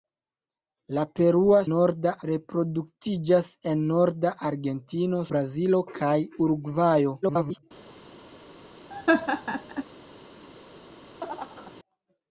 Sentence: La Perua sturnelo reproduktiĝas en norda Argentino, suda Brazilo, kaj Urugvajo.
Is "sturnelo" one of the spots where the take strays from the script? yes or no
yes